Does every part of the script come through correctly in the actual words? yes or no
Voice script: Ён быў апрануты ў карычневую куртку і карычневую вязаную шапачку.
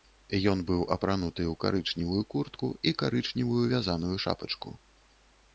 yes